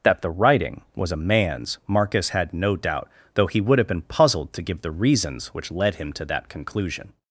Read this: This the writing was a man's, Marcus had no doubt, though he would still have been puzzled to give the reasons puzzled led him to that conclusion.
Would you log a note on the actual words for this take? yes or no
yes